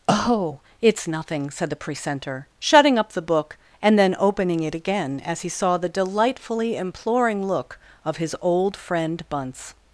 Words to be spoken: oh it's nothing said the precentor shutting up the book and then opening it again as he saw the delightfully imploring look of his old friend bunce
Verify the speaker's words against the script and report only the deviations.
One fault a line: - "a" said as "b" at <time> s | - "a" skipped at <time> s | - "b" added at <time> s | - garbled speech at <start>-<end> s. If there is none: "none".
none